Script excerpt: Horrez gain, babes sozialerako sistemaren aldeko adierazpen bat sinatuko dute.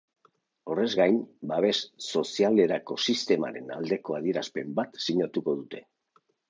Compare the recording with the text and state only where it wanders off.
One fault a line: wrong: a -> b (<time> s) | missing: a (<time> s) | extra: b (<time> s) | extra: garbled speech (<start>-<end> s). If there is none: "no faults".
no faults